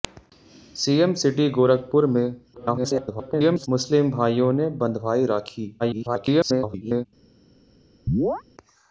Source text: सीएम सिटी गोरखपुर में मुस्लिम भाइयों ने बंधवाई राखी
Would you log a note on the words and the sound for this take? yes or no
yes